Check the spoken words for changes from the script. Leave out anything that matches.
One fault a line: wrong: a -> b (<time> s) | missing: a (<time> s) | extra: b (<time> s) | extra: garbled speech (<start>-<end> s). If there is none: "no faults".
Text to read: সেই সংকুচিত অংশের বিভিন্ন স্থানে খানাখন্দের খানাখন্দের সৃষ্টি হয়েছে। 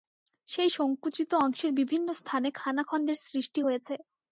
missing: খানাখন্দের (3.2 s)